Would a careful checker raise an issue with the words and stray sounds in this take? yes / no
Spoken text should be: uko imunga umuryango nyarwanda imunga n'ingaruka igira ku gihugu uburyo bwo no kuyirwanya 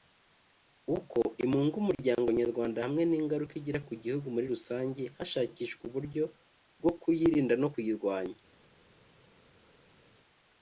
yes